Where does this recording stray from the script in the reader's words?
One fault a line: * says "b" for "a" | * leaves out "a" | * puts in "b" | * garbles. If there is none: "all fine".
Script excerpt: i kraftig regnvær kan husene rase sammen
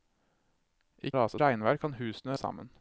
* says "rase" for "kraftig"
* leaves out "rase"